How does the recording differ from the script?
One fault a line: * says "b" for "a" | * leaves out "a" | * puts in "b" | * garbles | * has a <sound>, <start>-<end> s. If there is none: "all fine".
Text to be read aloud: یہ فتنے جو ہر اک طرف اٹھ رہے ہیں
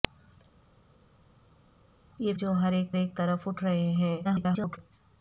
* leaves out "فتنے"
* puts in "اک"
* garbles